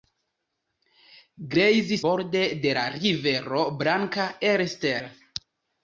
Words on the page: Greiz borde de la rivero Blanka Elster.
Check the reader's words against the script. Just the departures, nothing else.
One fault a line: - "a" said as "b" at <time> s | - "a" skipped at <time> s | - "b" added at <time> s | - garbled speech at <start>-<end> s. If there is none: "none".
none